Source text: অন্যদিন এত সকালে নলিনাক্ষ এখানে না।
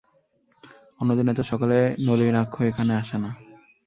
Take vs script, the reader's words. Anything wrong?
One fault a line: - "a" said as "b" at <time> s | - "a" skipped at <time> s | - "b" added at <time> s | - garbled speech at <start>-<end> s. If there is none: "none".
- "আসে" added at 3.0 s